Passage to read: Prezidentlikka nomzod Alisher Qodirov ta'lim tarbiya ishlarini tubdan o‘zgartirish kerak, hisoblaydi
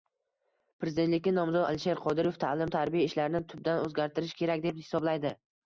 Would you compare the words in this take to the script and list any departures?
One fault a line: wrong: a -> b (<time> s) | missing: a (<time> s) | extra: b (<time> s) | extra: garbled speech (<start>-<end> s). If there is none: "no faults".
extra: deb (4.7 s)